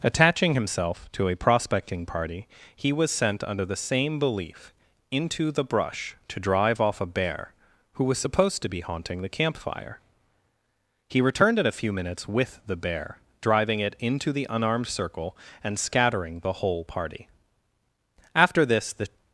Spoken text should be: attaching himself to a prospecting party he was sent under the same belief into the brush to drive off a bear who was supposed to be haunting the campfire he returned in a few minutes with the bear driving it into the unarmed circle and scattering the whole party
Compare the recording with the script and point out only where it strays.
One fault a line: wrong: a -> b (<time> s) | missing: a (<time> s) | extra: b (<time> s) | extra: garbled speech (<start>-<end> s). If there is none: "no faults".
extra: after this the (18.3 s)